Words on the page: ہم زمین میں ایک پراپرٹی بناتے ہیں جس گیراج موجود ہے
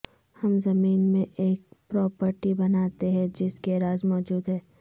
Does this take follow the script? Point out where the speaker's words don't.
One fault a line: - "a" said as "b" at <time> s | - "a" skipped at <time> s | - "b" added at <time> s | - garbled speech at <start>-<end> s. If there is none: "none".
none